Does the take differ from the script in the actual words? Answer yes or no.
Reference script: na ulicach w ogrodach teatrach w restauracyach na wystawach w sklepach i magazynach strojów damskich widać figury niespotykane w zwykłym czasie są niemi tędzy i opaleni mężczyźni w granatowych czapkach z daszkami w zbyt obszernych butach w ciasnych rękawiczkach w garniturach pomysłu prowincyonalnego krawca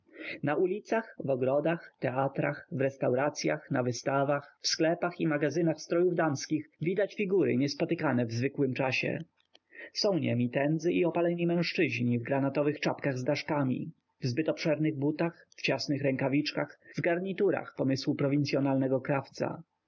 no